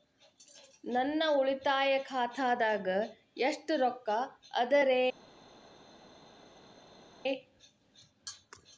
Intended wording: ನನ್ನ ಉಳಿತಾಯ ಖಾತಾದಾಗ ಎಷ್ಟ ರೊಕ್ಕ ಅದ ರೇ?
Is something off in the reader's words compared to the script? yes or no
no